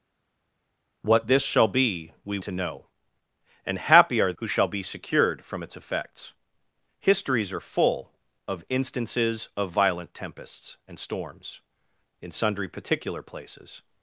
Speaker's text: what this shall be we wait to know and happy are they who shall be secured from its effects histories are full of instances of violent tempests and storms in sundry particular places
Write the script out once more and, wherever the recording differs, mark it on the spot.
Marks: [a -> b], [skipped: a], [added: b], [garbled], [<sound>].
what this shall be we [skipped: wait] to know and happy are [skipped: they] who shall be secured from its effects histories are full of instances of violent tempests and storms in sundry particular places